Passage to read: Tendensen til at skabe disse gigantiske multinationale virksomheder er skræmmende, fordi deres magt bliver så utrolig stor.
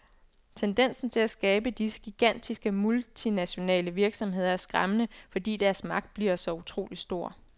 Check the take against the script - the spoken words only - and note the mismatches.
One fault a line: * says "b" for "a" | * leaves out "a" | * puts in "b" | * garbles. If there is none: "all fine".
all fine